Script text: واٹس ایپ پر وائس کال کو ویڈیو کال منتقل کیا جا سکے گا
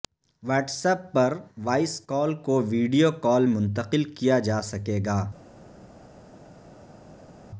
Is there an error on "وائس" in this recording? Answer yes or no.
no